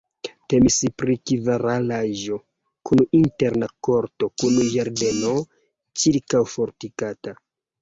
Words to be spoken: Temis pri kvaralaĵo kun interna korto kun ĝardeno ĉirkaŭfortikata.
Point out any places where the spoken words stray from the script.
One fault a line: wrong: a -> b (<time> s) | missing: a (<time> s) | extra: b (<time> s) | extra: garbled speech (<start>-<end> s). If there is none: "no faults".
no faults